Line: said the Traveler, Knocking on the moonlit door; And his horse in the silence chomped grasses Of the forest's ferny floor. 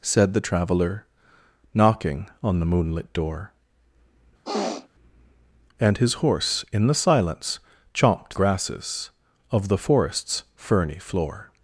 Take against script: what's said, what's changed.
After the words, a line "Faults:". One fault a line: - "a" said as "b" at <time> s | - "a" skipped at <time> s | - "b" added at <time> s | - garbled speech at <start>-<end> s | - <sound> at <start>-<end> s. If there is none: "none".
said the Traveler, Knocking on the moonlit door; And his horse in the silence chomped grasses Of the forest's ferny floor.
Faults:
- sniff at 4.4-4.9 s